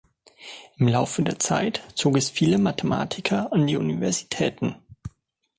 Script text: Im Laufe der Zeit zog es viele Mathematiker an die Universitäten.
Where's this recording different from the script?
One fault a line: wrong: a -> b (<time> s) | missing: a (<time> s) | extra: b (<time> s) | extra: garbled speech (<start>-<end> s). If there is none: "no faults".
no faults